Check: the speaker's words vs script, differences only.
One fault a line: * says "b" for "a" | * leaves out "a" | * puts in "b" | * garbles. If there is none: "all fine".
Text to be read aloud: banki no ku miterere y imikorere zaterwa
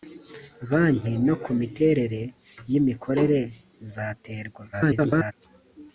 * garbles